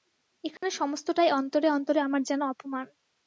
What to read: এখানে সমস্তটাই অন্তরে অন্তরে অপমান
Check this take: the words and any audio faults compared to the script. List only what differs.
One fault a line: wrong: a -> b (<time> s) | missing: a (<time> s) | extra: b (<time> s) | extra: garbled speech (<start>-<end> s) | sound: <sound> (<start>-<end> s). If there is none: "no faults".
sound: dropout (0.6-0.6 s)
extra: আমার যেন (2.0 s)